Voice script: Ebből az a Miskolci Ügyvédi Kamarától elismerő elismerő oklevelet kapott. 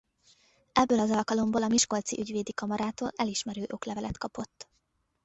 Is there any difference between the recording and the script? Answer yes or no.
yes